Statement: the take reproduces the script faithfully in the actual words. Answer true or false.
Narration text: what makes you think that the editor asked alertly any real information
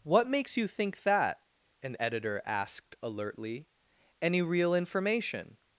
false